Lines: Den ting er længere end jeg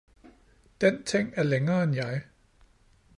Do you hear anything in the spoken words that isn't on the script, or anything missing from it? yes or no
no